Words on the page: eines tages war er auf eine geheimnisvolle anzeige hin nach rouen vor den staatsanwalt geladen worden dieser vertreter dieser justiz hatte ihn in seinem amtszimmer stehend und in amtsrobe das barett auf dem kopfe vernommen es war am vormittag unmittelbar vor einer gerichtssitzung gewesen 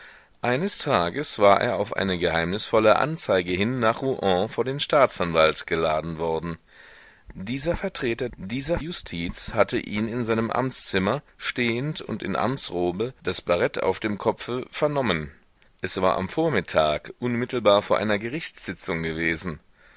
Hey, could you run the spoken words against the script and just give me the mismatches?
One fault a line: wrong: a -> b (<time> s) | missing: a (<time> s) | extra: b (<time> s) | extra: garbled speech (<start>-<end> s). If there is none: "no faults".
no faults